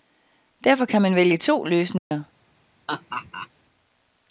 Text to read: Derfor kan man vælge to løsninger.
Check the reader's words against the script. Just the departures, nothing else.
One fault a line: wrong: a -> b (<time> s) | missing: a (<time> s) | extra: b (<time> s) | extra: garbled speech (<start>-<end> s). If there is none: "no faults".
no faults